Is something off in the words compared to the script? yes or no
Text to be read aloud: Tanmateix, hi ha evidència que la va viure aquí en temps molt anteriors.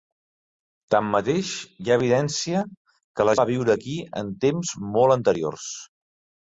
no